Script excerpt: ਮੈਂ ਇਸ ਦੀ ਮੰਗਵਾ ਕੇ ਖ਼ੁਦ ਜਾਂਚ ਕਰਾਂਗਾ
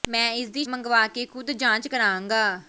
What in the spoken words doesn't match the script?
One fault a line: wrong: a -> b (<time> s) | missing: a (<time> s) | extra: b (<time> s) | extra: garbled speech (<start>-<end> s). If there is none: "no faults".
no faults